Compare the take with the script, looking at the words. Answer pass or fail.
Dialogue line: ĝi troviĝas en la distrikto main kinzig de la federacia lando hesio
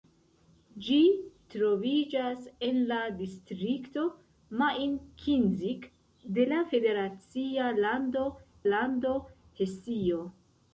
fail